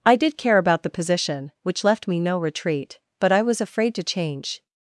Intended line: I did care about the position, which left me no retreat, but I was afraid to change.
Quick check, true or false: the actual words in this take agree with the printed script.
true